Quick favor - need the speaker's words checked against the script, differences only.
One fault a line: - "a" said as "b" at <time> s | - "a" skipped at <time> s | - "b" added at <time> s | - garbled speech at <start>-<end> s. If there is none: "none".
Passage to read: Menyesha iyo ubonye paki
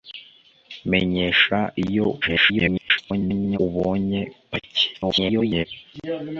- garbled speech at 2.2-3.6 s
- garbled speech at 4.9-5.7 s